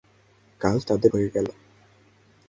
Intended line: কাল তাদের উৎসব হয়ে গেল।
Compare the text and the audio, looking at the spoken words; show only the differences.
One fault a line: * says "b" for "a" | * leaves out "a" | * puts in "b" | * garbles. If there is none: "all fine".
* leaves out "উৎসব"